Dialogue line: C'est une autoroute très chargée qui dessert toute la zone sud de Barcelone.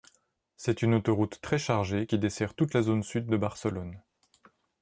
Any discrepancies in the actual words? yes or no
no